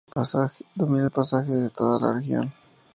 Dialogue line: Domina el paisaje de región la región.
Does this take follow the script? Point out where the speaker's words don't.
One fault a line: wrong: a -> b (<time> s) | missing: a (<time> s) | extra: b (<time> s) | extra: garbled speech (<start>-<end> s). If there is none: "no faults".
wrong: región -> toda (1.7 s)